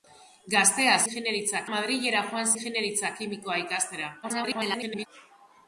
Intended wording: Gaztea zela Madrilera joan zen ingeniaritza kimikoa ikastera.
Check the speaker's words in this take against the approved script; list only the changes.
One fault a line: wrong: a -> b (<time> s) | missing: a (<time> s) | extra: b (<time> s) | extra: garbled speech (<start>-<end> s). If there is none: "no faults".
wrong: zela -> ingeniaritza (1.0 s)
missing: zen (2.5 s)
extra: garbled speech (4.2-5.1 s)